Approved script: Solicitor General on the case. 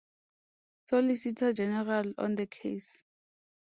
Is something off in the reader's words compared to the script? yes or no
no